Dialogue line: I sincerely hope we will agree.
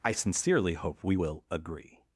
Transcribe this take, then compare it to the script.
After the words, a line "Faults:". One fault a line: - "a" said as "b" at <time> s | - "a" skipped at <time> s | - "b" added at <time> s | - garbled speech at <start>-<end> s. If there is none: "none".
I sincerely hope we will agree.
Faults:
none